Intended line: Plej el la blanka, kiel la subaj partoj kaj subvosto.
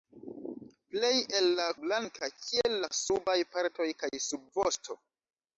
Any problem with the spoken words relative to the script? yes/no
no